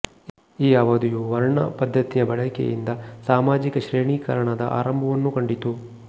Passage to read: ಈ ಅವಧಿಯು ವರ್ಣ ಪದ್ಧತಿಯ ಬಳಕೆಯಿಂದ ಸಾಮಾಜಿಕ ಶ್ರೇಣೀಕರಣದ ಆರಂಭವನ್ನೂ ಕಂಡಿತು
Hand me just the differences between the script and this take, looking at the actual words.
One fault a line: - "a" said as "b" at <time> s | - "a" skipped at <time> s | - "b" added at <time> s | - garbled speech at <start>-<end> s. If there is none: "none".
none